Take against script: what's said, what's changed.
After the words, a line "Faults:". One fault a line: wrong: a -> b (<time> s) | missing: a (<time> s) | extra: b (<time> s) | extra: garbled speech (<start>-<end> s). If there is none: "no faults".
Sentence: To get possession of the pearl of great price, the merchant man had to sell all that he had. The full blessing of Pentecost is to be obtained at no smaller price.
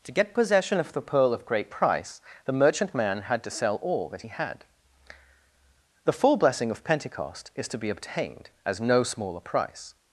To get possession of the pearl of great price, the merchant man had to sell all that he had. The full blessing of Pentecost is to be obtained as no smaller price.
Faults:
wrong: at -> as (8.7 s)